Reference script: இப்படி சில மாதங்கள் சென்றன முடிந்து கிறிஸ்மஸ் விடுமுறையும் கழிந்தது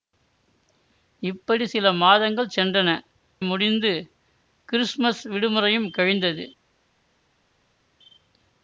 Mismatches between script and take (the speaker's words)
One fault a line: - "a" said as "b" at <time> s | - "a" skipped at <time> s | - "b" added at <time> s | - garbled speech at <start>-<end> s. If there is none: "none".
none